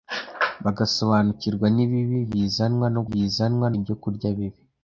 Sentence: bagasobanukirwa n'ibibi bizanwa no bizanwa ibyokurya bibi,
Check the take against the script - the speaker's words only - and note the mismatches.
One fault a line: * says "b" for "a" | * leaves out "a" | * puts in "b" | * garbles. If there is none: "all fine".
all fine